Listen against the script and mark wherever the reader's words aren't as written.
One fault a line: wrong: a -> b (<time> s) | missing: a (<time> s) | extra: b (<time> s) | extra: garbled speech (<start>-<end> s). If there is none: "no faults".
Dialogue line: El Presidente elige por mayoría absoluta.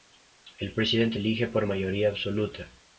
no faults